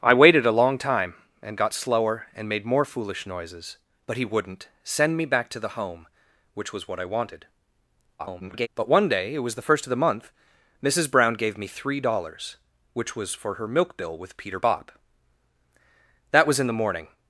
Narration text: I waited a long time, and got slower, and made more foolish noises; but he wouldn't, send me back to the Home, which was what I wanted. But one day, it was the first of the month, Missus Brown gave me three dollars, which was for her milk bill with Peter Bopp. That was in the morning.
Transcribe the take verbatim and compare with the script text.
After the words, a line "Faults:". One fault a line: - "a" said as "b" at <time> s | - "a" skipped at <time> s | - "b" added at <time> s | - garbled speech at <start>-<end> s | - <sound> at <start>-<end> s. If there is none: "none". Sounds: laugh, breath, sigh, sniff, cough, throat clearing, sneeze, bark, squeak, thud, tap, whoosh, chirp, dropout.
I waited a long time, and got slower, and made more foolish noises; but he wouldn't, send me back to the Home, which was what I wanted. [garbled] But one day, it was the first of the month, Missus Brown gave me three dollars, which was for her milk bill with Peter Bopp. That was in the morning.
Faults:
- garbled speech at 8.2-8.7 s